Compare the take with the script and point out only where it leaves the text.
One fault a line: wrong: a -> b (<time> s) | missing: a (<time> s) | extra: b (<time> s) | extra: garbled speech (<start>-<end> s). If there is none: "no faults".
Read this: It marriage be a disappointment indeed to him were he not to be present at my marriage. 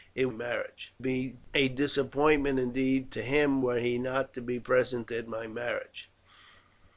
no faults